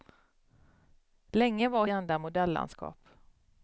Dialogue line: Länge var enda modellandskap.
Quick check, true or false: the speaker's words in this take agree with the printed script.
true